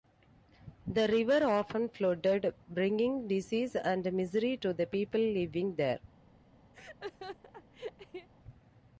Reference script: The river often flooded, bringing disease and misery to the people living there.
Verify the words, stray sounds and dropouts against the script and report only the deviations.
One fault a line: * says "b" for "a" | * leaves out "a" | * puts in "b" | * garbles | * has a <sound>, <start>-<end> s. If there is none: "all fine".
* has a laugh, 6.7-8.3 s